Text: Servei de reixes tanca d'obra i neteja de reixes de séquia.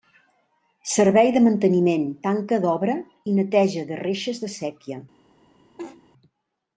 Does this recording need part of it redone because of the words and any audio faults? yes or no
yes